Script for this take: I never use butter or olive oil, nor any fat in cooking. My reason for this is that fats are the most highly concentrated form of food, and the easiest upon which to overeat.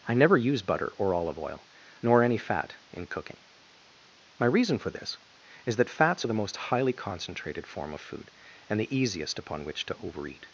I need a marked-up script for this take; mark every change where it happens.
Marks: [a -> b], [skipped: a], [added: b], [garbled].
I never use butter or olive oil, nor any fat in cooking. My reason for this is that fats are the most highly concentrated form of food, and the easiest upon which to overeat.